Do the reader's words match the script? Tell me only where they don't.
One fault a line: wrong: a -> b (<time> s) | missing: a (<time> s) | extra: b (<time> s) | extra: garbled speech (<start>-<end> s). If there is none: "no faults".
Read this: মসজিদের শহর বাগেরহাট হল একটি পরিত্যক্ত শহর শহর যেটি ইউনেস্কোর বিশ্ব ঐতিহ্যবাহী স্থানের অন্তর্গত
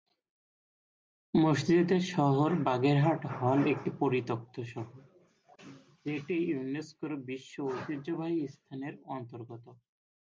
missing: শহর (5.0 s)